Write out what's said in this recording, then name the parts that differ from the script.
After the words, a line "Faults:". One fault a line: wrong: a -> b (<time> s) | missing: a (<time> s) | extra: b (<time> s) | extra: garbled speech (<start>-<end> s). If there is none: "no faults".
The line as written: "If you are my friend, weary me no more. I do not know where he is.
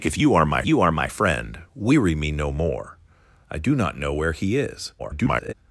"If you are my you are my friend, weary me no more. I do not know where he is. [garbled]
Faults:
extra: you are my (0.6 s)
extra: garbled speech (5.0-5.5 s)